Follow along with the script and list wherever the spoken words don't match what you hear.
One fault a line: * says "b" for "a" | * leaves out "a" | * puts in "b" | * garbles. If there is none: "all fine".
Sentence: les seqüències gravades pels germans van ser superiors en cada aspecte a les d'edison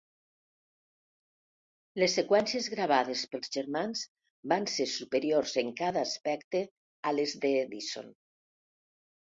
all fine